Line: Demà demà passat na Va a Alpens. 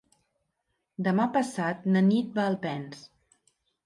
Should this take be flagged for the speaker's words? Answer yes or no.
yes